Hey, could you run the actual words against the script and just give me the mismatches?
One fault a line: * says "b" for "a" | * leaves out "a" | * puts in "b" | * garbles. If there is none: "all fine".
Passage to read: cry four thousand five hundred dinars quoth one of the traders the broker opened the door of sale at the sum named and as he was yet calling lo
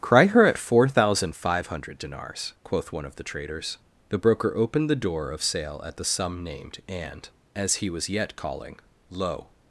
* puts in "her at"